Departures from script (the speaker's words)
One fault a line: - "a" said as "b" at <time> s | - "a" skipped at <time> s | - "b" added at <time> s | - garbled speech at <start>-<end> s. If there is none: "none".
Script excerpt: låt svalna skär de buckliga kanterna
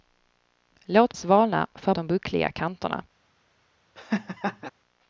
none